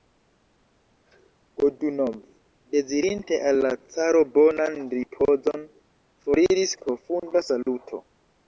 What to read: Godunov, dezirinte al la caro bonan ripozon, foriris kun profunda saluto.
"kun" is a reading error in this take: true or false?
true